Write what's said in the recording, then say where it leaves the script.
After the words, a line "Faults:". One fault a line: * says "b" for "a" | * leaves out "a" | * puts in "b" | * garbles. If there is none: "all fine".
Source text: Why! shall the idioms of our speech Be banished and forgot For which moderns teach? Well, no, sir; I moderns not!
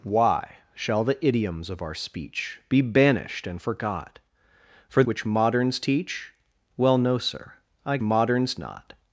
Why! shall the idioms of our speech Be banished and forgot For which moderns teach? Well, no, sir; I moderns not!
Faults:
all fine